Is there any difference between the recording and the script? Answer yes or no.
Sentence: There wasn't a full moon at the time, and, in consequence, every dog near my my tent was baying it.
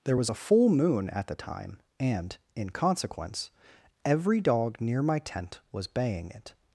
yes